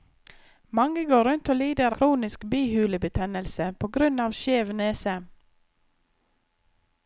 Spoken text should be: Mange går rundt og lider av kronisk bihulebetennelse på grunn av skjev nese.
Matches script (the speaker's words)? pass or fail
fail